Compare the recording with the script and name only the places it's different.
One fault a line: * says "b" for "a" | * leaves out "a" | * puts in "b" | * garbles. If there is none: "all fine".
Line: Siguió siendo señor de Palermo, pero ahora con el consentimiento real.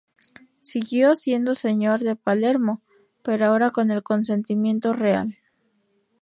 all fine